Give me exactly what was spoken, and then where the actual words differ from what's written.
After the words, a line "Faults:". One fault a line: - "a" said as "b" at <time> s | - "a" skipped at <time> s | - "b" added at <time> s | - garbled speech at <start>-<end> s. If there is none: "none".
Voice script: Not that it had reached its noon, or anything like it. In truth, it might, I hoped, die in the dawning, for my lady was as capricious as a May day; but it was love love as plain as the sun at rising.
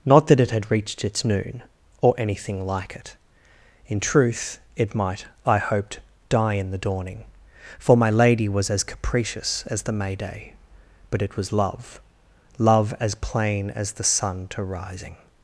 Not that it had reached its noon, or anything like it. In truth, it might, I hoped, die in the dawning, for my lady was as capricious as the May day; but it was love love as plain as the sun to rising.
Faults:
- "a" said as "the" at 9.8 s
- "at" said as "to" at 14.5 s